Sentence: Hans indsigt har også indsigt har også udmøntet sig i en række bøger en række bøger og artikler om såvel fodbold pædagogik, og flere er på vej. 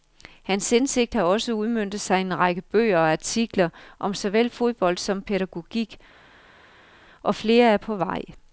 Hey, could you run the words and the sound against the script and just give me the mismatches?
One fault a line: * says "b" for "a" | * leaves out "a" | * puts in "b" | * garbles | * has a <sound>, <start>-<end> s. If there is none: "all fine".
* leaves out "indsigt har også"
* leaves out "en række bøger"
* puts in "som"